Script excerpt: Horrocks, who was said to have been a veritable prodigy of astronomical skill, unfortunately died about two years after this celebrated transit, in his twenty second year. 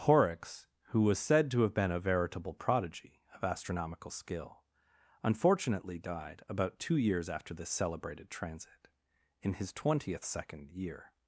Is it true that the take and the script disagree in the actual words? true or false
true